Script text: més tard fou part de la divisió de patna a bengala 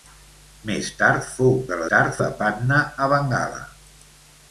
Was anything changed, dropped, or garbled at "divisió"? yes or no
yes